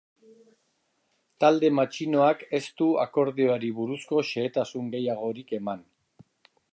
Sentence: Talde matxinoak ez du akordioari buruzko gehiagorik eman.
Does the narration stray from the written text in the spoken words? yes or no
yes